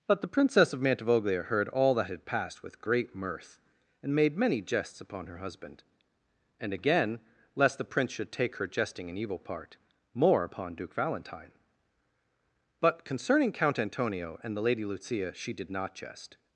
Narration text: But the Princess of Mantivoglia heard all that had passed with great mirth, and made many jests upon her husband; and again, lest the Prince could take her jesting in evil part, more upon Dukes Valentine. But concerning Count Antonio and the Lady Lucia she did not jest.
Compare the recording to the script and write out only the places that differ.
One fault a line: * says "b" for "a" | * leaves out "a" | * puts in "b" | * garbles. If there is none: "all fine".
* says "should" for "could"
* says "Duke" for "Dukes"